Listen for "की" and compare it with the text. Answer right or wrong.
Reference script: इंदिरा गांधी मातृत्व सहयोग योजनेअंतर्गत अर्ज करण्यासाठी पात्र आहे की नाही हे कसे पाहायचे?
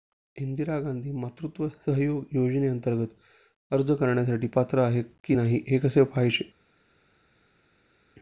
right